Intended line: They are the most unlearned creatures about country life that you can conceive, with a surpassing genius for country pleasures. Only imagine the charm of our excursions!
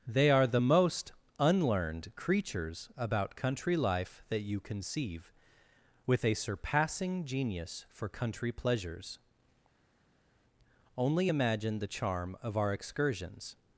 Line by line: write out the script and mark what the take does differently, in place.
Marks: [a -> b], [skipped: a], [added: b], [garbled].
They are the most unlearned creatures about country life that you [skipped: can] conceive, with a surpassing genius for country pleasures. Only imagine the charm of our excursions!